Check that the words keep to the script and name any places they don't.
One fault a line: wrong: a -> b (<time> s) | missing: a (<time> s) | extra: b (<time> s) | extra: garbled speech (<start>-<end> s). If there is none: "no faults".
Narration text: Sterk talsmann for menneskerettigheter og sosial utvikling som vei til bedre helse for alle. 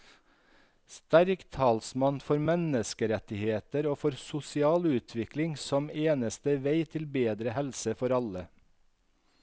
extra: for (4.0 s)
extra: eneste (5.9 s)